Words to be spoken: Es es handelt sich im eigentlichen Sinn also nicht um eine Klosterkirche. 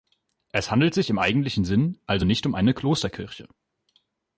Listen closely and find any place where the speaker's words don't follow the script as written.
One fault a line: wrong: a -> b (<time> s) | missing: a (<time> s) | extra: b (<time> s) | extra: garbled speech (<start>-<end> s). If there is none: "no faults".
missing: es (0.7 s)